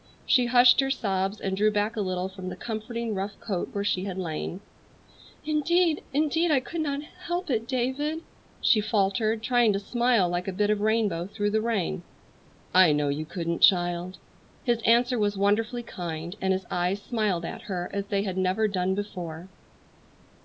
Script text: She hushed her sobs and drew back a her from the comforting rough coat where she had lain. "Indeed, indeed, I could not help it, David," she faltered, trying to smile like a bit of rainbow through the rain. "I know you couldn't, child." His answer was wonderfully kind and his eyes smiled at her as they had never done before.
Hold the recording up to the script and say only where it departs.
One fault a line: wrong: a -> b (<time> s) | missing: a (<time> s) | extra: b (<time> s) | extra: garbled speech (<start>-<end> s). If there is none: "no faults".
wrong: her -> little (2.0 s)